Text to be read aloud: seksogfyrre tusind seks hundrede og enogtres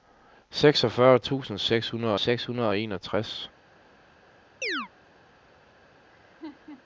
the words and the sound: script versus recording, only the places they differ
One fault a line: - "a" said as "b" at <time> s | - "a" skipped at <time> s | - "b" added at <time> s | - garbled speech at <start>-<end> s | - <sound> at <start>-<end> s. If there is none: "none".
- "seks hundrede" added at 2.2 s
- chirp at 4.6-4.9 s
- laugh at 6.1-6.8 s